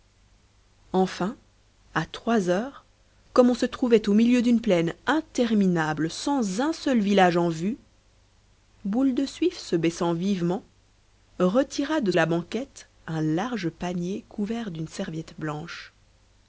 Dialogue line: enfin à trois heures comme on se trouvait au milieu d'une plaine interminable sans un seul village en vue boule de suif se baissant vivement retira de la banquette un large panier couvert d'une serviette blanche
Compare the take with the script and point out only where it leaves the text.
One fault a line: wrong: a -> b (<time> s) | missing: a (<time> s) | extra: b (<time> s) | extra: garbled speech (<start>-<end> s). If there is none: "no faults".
no faults